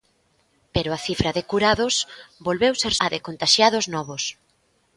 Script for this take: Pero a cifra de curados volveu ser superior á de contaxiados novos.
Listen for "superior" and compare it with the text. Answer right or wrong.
wrong